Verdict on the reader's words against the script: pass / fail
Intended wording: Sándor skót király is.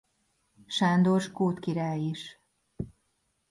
pass